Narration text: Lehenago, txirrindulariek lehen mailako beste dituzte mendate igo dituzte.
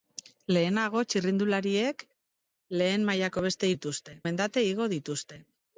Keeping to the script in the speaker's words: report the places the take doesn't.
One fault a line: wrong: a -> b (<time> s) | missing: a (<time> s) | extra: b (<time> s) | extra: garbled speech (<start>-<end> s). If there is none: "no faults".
no faults